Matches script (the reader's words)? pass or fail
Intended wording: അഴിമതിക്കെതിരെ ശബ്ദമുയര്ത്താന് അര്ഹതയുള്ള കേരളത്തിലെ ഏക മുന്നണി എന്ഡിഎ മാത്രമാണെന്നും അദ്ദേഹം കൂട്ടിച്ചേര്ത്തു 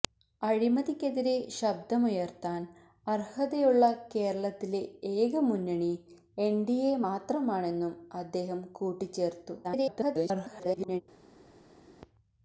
fail